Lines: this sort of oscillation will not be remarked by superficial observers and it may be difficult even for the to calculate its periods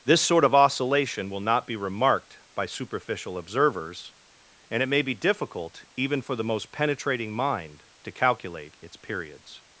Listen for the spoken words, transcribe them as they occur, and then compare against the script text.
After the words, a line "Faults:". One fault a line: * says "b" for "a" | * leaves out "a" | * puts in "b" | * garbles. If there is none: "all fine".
this sort of oscillation will not be remarked by superficial observers and it may be difficult even for the most penetrating mind to calculate its periods
Faults:
* puts in "most penetrating mind"